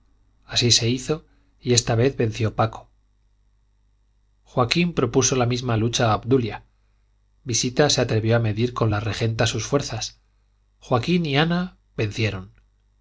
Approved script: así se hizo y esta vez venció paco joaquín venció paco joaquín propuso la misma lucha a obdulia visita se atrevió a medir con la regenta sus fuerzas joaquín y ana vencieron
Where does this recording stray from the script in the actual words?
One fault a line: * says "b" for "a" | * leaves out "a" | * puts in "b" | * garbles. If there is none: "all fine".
* leaves out "venció paco joaquín"